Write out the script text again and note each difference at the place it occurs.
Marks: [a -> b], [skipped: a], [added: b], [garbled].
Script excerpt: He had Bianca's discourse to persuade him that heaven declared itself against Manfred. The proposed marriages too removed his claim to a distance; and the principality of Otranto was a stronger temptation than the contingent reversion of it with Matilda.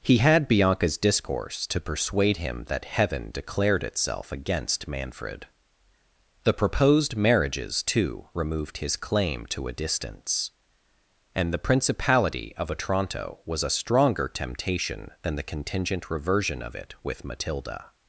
He had Bianca's discourse to persuade him that heaven declared itself against Manfred. The proposed marriages too removed his claim to a distance; and the principality of Otranto was a stronger temptation than the contingent reversion of it with Matilda.